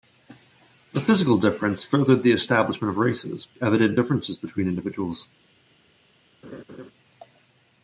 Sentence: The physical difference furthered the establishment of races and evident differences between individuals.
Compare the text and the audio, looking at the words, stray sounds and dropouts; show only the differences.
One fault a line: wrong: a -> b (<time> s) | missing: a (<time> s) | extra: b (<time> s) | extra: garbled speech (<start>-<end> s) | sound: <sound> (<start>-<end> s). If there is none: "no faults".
missing: and (3.5 s)
sound: laugh (6.4-6.9 s)